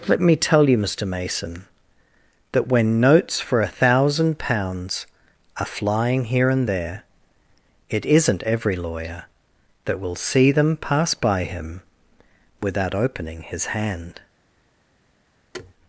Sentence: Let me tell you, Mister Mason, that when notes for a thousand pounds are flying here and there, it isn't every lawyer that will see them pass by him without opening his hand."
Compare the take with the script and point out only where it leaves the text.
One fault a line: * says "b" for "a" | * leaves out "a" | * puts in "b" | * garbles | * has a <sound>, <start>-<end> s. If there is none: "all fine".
* has a thud, 15.5-15.7 s